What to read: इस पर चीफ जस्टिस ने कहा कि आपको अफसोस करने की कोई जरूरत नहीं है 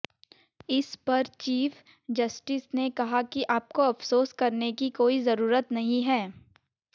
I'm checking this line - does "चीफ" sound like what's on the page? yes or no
yes